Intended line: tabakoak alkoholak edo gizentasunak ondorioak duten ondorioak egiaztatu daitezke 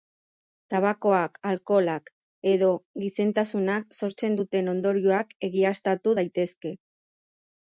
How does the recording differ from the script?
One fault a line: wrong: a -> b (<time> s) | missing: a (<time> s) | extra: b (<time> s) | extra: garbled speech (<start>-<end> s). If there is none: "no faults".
wrong: ondorioak -> sortzen (4.0 s)